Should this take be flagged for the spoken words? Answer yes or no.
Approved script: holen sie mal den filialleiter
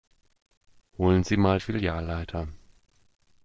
yes